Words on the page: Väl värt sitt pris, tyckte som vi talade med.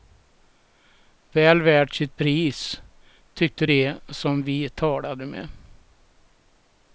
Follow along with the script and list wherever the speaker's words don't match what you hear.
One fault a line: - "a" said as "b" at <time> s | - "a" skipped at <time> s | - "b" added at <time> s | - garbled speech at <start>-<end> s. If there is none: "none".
- "de" added at 3.6 s